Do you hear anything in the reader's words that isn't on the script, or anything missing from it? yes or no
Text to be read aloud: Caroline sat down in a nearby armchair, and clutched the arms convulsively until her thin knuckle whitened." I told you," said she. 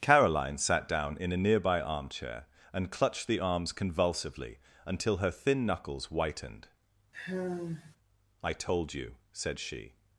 yes